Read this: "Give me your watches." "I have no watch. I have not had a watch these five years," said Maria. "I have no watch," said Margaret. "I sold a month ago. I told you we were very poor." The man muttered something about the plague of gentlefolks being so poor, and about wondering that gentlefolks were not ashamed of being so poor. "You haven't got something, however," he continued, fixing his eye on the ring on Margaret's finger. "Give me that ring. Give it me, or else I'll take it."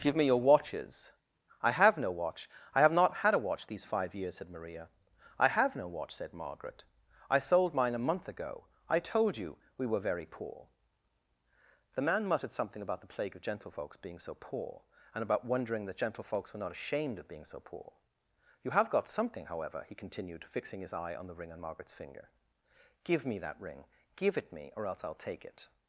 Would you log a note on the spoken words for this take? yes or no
yes